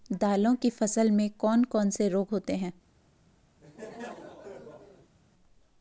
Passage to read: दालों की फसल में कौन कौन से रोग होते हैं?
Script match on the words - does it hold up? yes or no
yes